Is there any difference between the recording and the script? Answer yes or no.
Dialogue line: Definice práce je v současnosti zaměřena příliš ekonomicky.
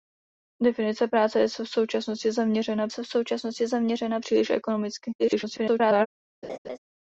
yes